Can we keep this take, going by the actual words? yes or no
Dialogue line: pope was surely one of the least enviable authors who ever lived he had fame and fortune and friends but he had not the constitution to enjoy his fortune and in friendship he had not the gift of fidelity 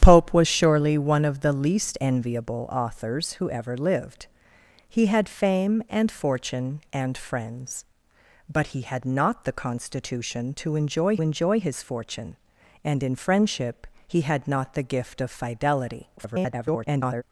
no